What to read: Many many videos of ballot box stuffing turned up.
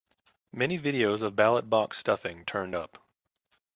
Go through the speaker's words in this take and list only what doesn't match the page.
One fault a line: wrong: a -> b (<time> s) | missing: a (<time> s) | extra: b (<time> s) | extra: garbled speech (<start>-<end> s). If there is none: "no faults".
missing: many (0.8 s)